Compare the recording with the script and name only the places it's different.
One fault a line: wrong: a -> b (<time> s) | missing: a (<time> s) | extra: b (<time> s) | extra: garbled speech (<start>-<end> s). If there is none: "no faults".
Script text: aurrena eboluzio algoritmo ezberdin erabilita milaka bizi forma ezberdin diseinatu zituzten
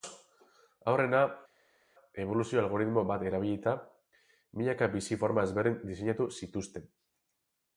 wrong: ezberdin -> bat (3.1 s)